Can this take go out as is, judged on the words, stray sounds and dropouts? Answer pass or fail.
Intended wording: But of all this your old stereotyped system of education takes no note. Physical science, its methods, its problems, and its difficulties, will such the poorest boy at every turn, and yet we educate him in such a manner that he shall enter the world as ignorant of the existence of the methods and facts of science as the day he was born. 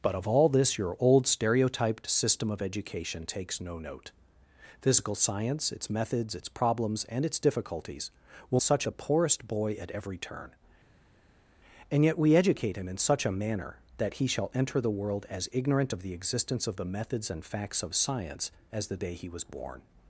pass